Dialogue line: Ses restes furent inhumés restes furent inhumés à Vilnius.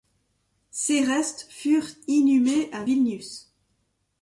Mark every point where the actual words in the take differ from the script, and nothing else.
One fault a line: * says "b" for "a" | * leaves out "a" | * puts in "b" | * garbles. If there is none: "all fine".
* leaves out "restes furent inhumés"